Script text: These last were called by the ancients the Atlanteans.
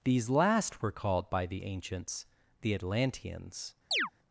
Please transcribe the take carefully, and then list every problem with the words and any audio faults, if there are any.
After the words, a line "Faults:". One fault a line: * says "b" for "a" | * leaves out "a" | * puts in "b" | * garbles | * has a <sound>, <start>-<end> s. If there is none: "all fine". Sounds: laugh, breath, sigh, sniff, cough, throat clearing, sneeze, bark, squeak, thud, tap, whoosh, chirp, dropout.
These last were called by the ancients the Atlanteans.
Faults:
* has a chirp, 3.9-4.1 s